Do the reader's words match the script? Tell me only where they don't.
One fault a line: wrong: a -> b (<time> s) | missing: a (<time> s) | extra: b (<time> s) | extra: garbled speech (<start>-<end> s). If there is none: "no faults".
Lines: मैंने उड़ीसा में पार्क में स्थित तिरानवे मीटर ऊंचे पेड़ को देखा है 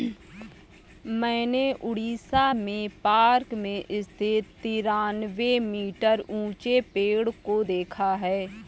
no faults